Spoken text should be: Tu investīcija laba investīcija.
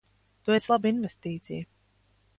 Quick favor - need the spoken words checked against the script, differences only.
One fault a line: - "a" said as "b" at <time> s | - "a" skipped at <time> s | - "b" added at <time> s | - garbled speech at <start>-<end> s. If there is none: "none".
- "investīcija" said as "esi" at 0.5 s